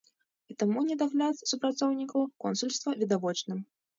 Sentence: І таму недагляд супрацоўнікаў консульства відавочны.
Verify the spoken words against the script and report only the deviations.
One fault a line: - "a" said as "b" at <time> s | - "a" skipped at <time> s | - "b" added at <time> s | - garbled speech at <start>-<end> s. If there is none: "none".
none